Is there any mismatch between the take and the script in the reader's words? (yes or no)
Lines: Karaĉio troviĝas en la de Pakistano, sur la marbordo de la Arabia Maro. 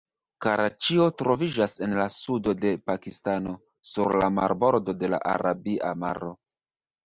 yes